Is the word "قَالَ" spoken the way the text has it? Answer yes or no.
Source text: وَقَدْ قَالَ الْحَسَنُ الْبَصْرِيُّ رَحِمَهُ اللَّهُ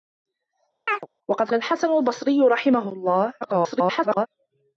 no